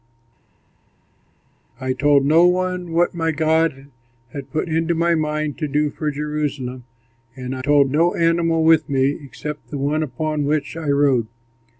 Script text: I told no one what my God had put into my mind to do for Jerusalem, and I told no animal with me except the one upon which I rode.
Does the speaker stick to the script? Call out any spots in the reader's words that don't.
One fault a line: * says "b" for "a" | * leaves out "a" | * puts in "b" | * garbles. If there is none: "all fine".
all fine